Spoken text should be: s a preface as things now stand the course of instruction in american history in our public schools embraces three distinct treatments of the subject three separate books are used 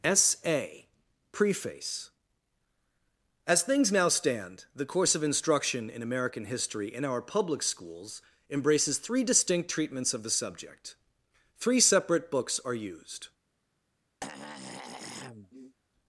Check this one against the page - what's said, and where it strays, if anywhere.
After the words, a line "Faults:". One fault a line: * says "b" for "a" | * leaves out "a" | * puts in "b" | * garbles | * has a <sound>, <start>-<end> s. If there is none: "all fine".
s a preface as things now stand the course of instruction in american history in our public schools embraces three distinct treatments of the subject three separate books are used
Faults:
* has a throat clearing, 14.2-15.8 s